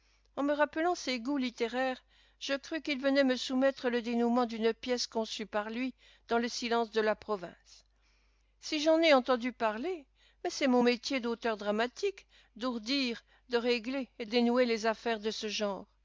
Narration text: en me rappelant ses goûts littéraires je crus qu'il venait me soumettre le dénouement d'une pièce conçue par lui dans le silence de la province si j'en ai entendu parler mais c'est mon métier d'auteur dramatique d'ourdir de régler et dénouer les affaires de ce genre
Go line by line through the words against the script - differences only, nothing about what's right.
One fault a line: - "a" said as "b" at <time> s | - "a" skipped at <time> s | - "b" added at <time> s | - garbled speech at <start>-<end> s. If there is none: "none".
none